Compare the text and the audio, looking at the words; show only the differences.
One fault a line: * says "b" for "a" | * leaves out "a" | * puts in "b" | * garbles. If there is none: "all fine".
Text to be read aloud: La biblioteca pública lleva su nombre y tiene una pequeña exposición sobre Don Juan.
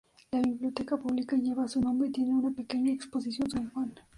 * leaves out "sobre"